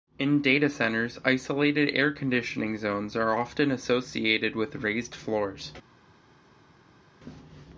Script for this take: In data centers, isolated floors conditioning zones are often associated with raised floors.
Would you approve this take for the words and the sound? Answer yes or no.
no